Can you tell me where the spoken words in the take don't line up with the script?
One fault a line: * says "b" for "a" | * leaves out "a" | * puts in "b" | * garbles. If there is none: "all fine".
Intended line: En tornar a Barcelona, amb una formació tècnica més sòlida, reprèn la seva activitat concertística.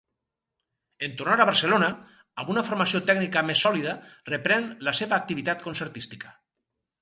all fine